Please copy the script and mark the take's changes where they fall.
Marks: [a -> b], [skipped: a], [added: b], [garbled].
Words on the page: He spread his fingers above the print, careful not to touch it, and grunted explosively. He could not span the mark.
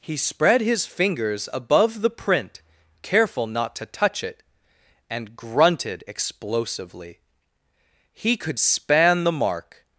He spread his fingers above the print, careful not to touch it, and grunted explosively. He could [skipped: not] span the mark.